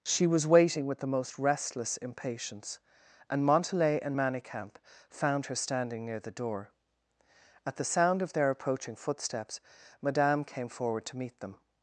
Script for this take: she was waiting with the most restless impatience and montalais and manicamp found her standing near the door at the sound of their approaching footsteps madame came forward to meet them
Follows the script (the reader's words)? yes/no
yes